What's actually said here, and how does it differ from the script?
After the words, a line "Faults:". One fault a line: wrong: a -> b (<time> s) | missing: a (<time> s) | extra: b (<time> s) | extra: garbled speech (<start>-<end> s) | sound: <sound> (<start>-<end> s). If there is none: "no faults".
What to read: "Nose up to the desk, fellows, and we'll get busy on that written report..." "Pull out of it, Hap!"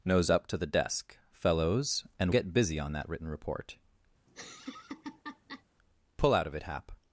"Nose up to the desk, fellows, and get busy on that written report..." "Pull out of it, Hap!"
Faults:
missing: we'll (2.3 s)
sound: laugh (4.3-5.6 s)